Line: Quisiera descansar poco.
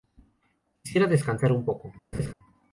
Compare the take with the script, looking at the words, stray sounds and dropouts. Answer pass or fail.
fail